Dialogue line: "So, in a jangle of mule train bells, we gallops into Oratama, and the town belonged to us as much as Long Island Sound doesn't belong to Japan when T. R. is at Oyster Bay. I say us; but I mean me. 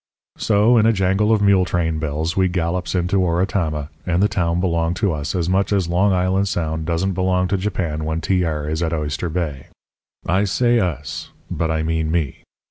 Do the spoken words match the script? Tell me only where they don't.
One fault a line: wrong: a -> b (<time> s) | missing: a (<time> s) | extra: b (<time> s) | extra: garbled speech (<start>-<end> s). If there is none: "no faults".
no faults